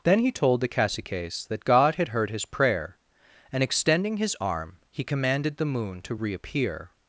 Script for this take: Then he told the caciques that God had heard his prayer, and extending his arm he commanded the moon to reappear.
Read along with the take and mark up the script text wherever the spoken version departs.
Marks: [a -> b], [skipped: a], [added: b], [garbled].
Then he told the caciques that God had heard his prayer, and extending his arm he commanded the moon to reappear.